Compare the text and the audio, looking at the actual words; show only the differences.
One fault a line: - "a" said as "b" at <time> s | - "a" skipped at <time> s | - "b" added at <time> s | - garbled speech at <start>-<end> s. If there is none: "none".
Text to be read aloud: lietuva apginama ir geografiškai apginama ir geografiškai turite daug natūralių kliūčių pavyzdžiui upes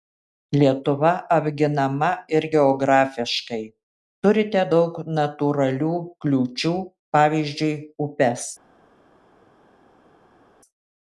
- "apginama ir geografiškai" skipped at 3.6 s